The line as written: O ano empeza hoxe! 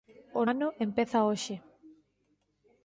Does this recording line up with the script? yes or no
yes